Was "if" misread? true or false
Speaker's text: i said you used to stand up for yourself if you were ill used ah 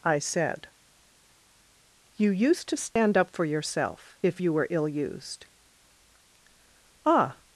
false